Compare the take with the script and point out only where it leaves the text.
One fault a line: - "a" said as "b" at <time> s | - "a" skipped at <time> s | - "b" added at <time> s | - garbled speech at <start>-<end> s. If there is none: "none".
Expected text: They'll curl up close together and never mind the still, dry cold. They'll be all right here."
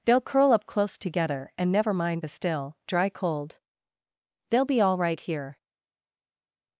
none